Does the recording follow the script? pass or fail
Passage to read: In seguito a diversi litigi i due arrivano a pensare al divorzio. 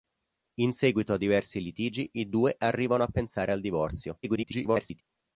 fail